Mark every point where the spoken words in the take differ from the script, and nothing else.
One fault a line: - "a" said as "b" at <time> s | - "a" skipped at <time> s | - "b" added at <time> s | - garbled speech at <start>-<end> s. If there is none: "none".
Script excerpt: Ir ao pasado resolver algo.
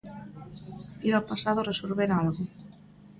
none